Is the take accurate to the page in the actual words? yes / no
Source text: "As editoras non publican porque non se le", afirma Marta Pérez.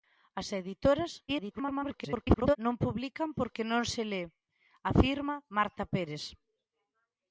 no